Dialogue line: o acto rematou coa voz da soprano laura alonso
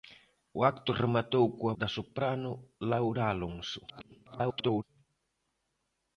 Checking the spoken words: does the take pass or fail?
fail